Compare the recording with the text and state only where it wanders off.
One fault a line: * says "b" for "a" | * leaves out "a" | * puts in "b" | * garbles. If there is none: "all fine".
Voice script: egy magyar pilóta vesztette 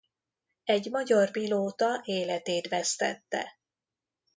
* puts in "életét"